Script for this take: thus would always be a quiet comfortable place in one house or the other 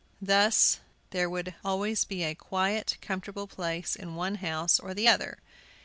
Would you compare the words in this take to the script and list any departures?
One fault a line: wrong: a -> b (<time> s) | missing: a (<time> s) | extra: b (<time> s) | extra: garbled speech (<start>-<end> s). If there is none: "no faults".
extra: there (1.1 s)